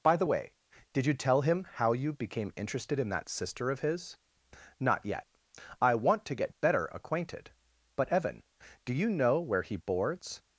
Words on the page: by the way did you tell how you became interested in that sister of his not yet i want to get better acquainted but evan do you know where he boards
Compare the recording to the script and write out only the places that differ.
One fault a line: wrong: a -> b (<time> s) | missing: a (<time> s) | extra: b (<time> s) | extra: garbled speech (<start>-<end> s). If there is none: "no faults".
extra: him (1.4 s)